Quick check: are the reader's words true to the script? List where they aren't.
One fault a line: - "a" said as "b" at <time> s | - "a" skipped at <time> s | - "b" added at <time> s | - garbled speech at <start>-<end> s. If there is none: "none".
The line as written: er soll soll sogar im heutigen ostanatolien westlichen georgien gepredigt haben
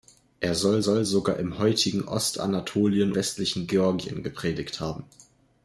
none